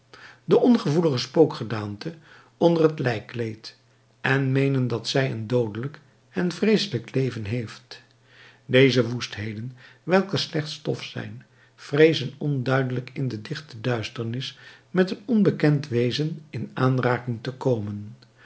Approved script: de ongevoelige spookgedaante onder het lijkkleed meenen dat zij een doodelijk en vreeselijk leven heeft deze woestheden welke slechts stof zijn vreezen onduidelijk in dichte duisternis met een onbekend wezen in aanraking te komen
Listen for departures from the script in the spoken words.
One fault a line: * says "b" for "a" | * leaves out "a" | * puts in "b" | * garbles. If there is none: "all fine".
* puts in "en"
* puts in "de"